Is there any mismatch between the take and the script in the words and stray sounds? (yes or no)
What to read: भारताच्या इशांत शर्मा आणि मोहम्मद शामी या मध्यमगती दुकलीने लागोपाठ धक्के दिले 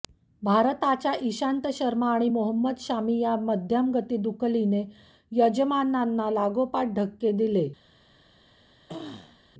yes